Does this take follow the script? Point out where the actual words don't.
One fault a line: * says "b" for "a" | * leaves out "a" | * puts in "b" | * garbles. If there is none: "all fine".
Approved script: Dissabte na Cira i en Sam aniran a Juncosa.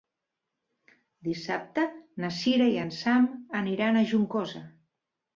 all fine